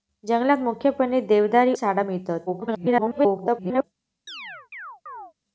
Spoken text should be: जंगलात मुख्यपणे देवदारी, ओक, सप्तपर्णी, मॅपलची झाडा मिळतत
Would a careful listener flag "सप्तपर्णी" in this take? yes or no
yes